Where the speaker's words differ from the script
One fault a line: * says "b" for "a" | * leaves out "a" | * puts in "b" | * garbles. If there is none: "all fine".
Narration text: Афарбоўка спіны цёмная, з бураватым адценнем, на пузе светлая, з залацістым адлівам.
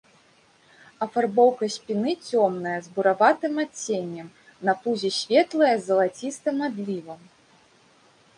all fine